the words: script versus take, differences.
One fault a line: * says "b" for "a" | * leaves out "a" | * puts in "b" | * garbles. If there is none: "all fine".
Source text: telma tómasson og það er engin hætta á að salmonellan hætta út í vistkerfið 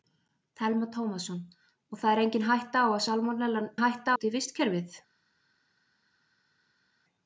all fine